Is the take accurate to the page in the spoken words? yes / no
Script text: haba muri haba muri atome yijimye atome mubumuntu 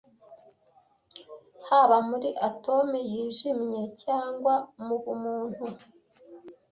no